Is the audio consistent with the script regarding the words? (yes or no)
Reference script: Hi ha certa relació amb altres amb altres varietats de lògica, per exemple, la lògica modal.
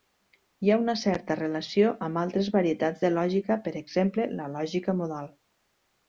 no